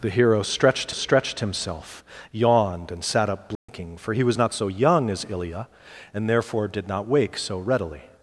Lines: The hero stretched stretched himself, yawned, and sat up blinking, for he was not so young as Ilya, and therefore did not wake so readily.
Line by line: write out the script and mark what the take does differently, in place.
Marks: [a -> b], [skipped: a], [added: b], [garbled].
The hero stretched stretched himself, yawned, and sat up blinking, for he was not so young as Ilya, and therefore did not wake so readily.